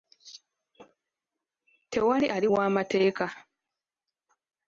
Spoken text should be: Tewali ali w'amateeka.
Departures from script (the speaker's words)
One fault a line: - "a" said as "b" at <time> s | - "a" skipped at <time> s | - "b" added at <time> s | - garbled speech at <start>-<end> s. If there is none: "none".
none